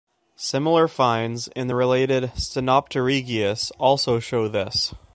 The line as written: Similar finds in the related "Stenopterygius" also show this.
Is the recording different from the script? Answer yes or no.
no